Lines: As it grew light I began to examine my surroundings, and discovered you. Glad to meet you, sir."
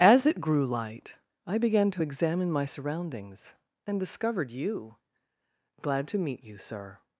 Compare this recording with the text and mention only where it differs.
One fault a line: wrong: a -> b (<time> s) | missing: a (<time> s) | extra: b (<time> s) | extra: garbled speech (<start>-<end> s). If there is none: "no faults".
no faults